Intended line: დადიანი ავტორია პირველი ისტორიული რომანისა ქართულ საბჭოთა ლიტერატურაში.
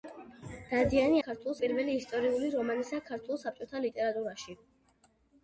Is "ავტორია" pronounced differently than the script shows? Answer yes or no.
yes